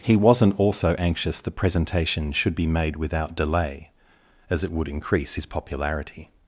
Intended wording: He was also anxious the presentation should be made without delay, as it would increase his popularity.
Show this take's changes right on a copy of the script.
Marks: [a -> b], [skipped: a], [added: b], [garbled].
He [was -> wasn't] also anxious the presentation should be made without delay, as it would increase his popularity.